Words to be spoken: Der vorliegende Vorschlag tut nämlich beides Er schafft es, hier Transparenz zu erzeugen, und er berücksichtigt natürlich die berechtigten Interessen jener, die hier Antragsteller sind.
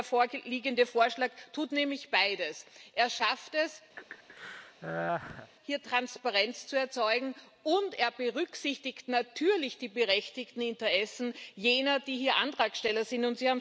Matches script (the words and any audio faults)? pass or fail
fail